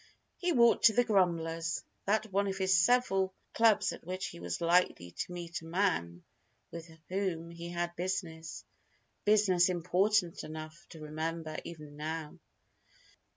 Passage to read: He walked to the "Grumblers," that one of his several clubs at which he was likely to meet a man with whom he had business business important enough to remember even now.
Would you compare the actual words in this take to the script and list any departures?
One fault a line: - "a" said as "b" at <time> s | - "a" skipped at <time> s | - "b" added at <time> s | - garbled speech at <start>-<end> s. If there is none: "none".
none